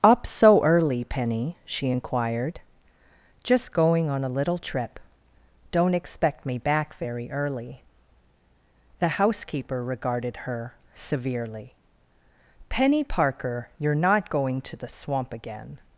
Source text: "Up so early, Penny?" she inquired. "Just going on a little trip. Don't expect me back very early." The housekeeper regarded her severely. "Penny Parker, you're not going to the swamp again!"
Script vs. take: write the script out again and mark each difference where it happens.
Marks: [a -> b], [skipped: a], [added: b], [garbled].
"Up so early, Penny?" she inquired. "Just going on a little trip. Don't expect me back very early." The housekeeper regarded her severely. "Penny Parker, you're not going to the swamp again!"